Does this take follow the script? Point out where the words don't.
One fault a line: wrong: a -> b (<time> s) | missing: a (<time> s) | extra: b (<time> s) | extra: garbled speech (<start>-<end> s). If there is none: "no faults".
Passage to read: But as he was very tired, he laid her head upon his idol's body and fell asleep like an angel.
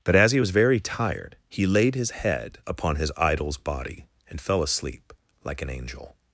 wrong: her -> his (2.0 s)